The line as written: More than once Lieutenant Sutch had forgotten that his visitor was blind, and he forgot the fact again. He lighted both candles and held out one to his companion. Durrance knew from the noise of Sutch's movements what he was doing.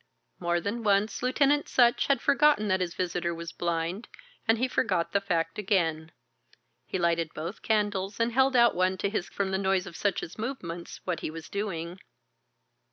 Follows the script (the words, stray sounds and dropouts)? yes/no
no